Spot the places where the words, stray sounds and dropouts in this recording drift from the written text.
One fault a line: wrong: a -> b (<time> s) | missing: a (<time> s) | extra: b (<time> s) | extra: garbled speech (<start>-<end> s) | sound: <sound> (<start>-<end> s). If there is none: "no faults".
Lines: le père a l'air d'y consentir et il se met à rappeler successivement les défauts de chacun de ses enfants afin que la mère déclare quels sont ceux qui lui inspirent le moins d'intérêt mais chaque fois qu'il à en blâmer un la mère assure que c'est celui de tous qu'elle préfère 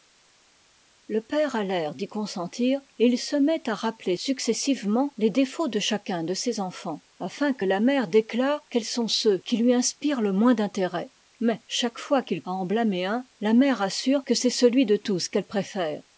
no faults